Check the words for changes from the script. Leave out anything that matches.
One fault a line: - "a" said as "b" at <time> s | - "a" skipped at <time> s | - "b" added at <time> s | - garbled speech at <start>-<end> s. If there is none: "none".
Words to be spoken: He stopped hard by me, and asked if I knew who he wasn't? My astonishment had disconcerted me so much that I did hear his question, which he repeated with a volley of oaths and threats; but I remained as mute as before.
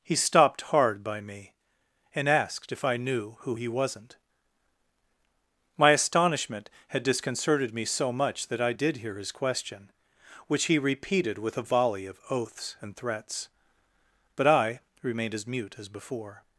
none